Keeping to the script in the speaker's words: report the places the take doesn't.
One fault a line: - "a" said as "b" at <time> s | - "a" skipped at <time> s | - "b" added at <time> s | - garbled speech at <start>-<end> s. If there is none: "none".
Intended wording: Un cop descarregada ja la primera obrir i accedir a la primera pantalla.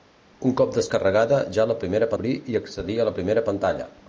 none